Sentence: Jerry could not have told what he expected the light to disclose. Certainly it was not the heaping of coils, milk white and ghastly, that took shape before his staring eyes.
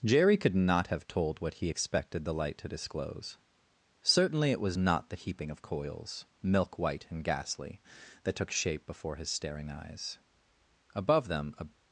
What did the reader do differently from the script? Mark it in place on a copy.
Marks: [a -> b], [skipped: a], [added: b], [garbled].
Jerry could not have told what he expected the light to disclose. Certainly it was not the heaping of coils, milk white and ghastly, that took shape before his staring eyes. [added: Above them a]